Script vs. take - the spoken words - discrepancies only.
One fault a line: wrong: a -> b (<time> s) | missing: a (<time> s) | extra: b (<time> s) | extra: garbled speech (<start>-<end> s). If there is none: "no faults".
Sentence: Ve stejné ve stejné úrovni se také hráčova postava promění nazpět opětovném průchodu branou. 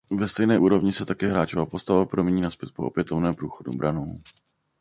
missing: ve stejné (0.6 s)
extra: po (2.7 s)